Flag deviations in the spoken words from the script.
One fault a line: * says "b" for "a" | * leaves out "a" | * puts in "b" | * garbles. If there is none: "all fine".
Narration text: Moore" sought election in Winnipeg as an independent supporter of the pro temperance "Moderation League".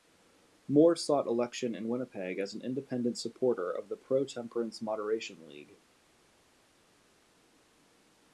all fine